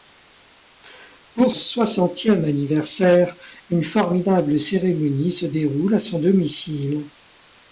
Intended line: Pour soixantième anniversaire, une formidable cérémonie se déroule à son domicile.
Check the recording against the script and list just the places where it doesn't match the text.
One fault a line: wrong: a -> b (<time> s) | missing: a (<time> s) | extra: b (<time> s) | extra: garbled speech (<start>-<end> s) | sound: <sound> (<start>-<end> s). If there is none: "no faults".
no faults